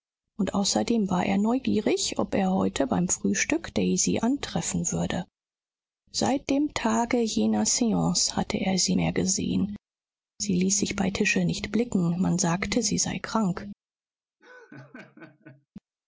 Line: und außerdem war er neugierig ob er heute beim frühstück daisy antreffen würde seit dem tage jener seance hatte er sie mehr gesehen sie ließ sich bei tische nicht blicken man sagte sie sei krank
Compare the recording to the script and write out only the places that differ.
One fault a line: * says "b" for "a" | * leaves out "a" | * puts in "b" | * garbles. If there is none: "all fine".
all fine